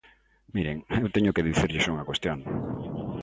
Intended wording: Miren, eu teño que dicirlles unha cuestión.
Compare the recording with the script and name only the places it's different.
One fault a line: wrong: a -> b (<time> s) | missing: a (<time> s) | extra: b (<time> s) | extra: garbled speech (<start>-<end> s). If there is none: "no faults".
no faults